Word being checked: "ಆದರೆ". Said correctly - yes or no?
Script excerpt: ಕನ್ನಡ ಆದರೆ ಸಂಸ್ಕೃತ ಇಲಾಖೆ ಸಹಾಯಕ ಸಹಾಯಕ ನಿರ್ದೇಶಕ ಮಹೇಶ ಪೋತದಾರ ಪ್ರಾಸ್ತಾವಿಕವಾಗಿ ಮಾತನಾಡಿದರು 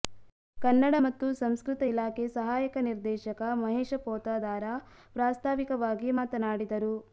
no